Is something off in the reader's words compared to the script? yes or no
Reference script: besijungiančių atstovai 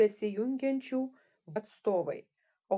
no